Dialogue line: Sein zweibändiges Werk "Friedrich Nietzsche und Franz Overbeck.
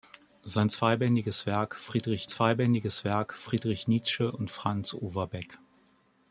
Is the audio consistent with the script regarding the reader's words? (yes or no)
no